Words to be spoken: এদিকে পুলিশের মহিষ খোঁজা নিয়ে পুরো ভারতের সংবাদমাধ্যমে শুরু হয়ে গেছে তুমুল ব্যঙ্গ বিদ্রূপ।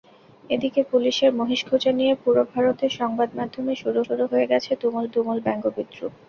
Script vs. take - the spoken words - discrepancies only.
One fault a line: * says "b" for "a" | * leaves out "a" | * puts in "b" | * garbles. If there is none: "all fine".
* puts in "শুরু"
* puts in "তুমুল"